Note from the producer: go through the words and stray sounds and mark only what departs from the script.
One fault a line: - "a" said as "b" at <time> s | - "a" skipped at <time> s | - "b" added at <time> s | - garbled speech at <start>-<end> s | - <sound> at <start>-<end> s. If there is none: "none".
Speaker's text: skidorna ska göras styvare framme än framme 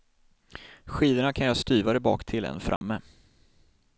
- "ska" said as "kan" at 1.3 s
- "framme" said as "baktill" at 2.0 s
- dropout at 2.8-2.8 s